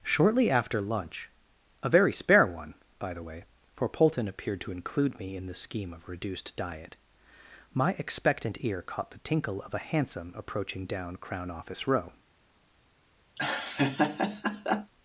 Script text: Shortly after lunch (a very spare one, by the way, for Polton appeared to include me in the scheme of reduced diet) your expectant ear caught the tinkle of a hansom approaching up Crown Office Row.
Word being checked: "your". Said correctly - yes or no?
no